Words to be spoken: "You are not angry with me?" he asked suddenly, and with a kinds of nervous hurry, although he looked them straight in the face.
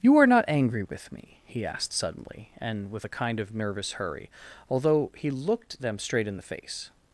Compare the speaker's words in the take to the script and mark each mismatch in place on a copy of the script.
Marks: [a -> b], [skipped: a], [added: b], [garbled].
"You are not angry with me?" he asked suddenly, and with a [kinds -> kind] of nervous hurry, although he looked them straight in the face.